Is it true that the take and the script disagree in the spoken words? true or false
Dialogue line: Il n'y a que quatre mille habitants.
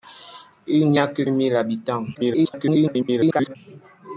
true